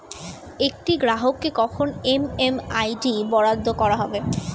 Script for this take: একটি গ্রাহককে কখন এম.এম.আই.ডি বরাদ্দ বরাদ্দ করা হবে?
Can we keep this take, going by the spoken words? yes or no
no